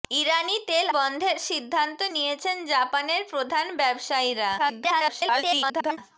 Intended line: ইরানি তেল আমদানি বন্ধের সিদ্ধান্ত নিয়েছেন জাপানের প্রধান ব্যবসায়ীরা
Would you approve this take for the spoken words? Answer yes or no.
no